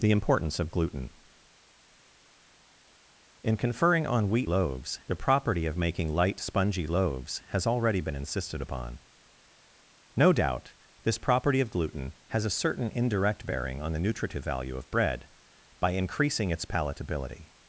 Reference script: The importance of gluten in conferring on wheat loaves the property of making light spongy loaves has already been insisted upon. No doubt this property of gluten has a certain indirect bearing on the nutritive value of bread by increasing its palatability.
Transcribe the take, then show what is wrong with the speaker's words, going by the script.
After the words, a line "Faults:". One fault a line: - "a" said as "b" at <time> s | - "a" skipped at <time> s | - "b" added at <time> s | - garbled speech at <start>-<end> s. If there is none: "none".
The importance of gluten in conferring on wheat loaves the property of making light spongy loaves has already been insisted upon. No doubt this property of gluten has a certain indirect bearing on the nutritive value of bread by increasing its palatability.
Faults:
none